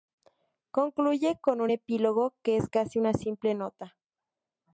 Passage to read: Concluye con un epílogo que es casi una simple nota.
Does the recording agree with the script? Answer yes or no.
yes